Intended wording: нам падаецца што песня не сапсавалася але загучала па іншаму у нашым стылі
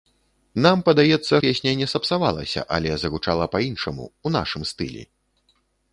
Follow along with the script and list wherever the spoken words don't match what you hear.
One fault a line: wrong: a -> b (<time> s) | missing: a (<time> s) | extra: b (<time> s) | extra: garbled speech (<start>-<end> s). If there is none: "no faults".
missing: што (1.4 s)